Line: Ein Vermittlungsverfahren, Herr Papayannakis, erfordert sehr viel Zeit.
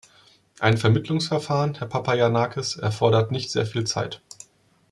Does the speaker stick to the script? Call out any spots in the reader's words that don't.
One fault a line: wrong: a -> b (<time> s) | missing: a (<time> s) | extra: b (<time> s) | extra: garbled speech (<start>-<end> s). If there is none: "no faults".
extra: nicht (3.3 s)